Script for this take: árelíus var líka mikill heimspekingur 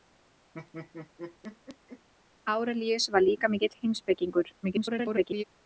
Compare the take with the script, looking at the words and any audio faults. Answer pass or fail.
fail